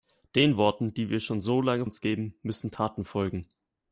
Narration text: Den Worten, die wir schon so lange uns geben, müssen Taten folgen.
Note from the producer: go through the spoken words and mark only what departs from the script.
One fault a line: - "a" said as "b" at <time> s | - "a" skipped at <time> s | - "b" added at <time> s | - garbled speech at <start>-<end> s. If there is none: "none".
none